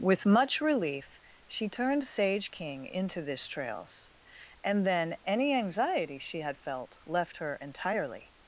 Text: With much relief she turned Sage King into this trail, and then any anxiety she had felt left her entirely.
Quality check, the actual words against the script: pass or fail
fail